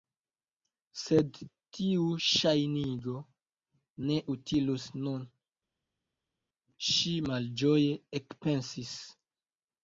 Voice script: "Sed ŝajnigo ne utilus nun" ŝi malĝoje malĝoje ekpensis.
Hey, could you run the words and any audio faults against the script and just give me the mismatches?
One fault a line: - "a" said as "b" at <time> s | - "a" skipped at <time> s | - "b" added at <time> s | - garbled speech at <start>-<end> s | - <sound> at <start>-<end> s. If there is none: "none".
- "tiu" added at 1.8 s
- "malĝoje" skipped at 8.0 s